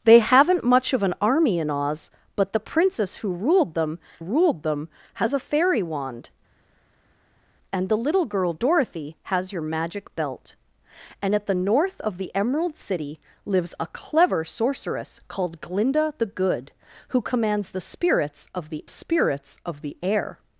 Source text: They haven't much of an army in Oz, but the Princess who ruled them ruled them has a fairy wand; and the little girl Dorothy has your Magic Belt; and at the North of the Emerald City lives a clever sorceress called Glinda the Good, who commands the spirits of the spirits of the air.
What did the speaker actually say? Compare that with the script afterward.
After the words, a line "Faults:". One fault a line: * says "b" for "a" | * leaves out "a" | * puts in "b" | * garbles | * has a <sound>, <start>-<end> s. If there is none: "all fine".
They haven't much of an army in Oz, but the Princess who ruled them ruled them has a fairy wand; and the little girl Dorothy has your Magic Belt; and at the North of the Emerald City lives a clever sorceress called Glinda the Good, who commands the spirits of the spirits of the air.
Faults:
all fine